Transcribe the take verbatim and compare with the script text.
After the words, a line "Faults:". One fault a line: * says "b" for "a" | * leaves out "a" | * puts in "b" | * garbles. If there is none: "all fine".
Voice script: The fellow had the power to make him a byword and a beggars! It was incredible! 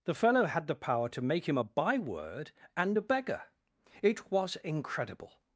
The fellow had the power to make him a byword and a beggar! It was incredible!
Faults:
* says "beggar" for "beggars"